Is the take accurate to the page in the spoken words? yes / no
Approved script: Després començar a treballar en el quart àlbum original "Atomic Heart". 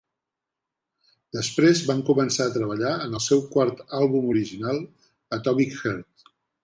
no